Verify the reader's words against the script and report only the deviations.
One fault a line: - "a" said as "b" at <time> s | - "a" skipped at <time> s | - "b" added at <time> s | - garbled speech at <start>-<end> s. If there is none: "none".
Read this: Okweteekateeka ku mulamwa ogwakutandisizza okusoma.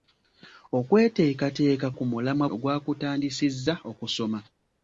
none